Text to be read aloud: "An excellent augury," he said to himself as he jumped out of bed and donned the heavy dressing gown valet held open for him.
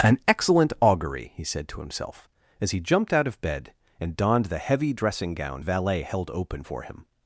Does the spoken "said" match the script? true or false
true